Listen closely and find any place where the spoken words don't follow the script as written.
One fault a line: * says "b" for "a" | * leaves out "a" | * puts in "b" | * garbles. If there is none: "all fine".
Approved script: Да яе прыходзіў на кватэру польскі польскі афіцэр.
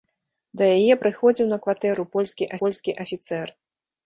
all fine